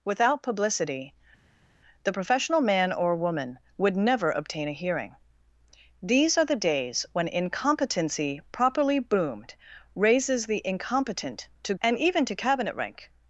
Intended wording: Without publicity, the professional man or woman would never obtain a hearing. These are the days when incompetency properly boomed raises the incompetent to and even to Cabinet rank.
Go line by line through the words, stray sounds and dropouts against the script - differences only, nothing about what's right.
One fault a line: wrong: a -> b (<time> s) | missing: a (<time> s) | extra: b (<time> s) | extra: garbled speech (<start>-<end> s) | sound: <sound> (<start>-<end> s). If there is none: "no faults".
no faults